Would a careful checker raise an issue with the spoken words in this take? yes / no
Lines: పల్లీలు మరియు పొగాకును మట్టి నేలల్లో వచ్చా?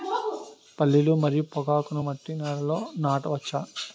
yes